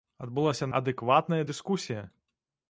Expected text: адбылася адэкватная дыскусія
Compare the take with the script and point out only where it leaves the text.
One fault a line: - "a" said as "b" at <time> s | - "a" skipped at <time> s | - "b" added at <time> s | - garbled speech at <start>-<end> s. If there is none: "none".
none